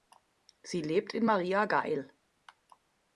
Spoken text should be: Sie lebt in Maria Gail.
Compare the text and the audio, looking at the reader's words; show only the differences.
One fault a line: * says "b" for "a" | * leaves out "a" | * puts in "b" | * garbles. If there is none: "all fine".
all fine